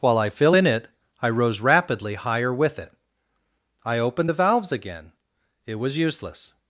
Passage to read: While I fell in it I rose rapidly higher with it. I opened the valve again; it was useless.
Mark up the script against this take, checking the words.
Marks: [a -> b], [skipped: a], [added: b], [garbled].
While I [fell -> fill] in it I rose rapidly higher with it. I opened the [valve -> valves] again; it was useless.